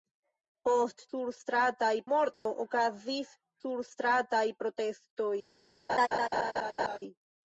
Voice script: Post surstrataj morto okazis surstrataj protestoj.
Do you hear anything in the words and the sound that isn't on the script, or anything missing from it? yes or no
yes